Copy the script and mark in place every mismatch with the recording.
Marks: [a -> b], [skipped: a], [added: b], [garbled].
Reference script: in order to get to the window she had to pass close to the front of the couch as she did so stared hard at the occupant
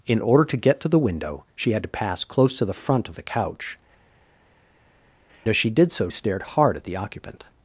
in order to get to the window she had to pass close to the front of the couch as she did so stared hard at the occupant